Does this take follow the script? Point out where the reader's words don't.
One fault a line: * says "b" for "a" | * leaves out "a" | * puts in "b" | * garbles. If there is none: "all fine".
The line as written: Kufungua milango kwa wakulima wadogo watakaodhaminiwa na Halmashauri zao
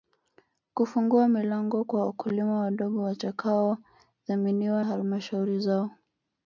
* leaves out "na"